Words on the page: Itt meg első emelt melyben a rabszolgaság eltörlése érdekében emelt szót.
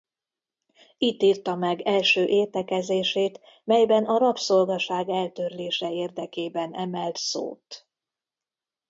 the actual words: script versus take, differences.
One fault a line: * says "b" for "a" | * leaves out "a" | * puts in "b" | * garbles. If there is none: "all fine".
* puts in "írta"
* says "értekezését" for "emelt"